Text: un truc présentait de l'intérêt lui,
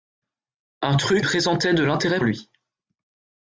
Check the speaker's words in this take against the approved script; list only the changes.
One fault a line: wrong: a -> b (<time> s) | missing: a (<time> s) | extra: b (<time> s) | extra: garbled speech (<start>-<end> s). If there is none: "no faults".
no faults